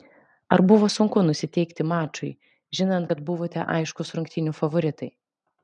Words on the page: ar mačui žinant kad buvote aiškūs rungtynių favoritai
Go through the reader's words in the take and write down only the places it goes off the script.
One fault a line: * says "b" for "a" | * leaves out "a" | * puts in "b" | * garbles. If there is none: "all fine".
* puts in "buvo sunku nusiteikti"